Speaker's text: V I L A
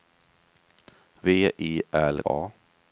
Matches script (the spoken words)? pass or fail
pass